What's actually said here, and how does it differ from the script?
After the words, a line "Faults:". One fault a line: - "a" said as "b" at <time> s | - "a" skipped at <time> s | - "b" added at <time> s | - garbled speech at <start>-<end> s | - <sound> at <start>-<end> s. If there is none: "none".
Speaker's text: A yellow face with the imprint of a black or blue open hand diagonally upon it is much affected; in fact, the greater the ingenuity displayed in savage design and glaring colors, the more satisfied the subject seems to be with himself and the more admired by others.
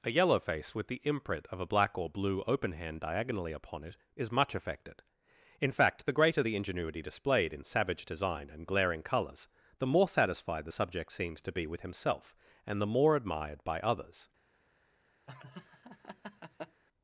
A yellow face with the imprint of a black or blue open hand diagonally upon it is much affected; in fact, the greater the ingenuity displayed in savage design and glaring colors, the more satisfied the subject seems to be with himself and the more admired by others.
Faults:
- laugh at 15.3-16.8 s